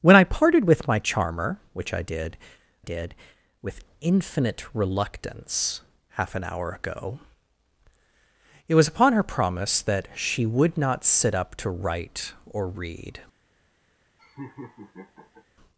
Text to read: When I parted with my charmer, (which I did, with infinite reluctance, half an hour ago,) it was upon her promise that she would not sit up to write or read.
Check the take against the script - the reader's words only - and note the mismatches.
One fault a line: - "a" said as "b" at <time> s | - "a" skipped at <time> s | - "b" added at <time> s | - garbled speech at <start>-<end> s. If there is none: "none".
- "did" added at 2.8 s